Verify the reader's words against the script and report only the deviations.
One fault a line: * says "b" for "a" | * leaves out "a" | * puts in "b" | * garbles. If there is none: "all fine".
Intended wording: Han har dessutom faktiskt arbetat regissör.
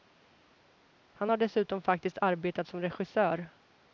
* puts in "som"